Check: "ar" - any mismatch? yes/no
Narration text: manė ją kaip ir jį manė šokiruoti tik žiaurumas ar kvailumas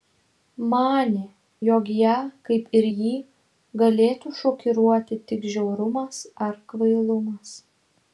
no